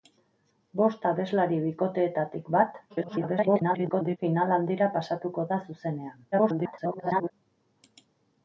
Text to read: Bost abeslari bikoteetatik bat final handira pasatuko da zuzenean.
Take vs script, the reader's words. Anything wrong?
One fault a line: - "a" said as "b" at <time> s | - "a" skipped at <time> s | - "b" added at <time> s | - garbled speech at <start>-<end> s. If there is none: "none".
- garbled speech at 2.9-4.2 s
- garbled speech at 6.3-7.3 s